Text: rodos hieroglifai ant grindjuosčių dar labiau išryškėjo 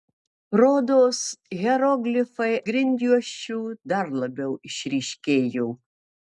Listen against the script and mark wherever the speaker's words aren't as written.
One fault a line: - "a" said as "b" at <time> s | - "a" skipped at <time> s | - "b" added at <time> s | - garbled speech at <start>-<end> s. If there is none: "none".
- "ant" skipped at 2.5 s